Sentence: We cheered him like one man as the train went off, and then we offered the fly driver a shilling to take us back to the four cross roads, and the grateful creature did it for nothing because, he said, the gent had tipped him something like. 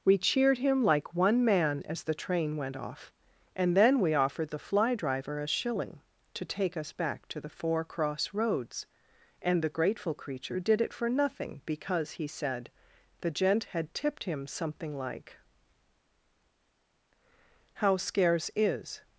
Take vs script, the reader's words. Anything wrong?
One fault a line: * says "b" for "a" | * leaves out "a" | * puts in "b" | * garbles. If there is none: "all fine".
* puts in "How scarce is"